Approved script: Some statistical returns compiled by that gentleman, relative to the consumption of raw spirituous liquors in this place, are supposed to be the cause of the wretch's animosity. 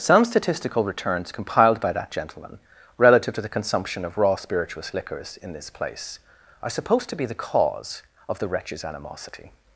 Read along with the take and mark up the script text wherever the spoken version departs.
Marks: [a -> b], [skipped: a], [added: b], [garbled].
Some statistical returns compiled by that gentleman, relative to the consumption of raw spirituous liquors in this place, are supposed to be the cause of the wretch's animosity.